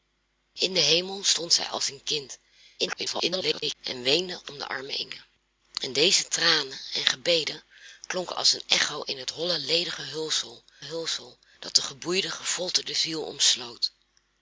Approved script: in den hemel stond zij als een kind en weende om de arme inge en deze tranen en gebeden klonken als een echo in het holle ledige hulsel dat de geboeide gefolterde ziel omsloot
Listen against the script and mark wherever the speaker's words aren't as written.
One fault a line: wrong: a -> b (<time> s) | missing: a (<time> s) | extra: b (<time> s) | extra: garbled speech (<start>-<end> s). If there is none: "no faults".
extra: garbled speech (2.8-3.7 s)
extra: hulsel (10.8 s)